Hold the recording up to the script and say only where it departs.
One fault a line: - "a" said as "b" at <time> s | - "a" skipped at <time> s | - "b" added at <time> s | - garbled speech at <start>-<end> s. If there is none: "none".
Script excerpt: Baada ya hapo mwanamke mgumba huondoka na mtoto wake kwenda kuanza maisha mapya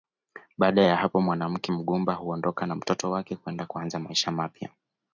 none